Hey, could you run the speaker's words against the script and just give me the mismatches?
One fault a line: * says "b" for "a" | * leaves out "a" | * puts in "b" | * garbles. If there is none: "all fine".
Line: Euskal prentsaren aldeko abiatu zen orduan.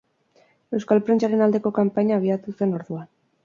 * puts in "kanpaina"